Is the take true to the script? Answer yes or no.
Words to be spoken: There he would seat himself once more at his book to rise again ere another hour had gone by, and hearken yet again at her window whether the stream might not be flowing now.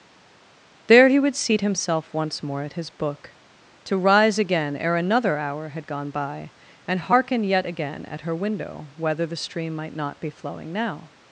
yes